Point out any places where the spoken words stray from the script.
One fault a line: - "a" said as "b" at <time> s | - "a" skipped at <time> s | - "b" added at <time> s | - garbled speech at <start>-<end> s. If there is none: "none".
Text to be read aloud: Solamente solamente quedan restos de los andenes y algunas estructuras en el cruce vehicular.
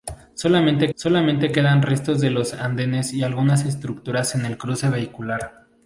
none